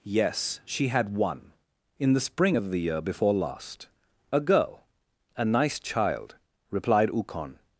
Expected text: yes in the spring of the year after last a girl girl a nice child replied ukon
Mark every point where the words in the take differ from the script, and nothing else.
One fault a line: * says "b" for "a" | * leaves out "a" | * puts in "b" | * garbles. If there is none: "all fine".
* puts in "she had one"
* says "before" for "after"
* leaves out "girl"